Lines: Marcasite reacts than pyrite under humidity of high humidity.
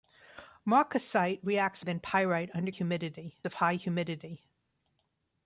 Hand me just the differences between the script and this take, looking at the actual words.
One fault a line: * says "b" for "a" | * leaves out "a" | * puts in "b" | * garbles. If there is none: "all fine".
all fine